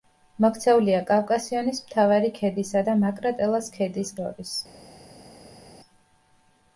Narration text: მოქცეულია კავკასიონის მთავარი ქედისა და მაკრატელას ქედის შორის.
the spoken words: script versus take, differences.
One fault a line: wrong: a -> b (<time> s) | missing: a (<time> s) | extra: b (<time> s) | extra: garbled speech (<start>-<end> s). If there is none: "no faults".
no faults